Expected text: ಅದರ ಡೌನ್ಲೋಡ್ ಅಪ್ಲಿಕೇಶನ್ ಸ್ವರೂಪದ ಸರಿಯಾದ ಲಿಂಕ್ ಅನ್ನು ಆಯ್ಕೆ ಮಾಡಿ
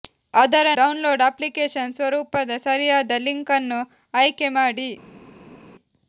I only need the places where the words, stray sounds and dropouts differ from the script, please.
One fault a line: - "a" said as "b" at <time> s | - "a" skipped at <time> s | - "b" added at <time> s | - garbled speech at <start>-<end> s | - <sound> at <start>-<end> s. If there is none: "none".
none